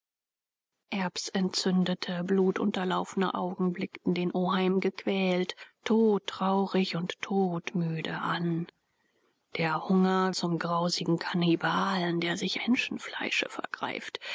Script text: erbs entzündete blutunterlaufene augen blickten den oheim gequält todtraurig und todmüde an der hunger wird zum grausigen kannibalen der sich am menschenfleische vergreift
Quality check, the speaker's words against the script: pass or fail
fail